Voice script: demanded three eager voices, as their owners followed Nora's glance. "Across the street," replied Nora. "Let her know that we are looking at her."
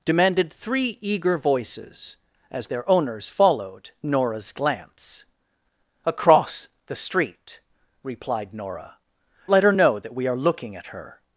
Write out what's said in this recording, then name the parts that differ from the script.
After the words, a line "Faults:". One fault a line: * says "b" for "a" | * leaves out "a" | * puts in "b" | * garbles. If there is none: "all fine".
demanded three eager voices, as their owners followed Nora's glance. "Across the street," replied Nora. "Let her know that we are looking at her."
Faults:
all fine